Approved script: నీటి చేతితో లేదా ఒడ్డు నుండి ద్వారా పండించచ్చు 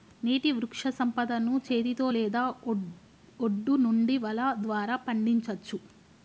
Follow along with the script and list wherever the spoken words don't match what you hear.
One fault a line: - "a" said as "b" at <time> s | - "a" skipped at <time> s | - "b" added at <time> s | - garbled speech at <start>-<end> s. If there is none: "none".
- "వృక్షసంపదను" added at 0.5 s
- "వల" added at 4.2 s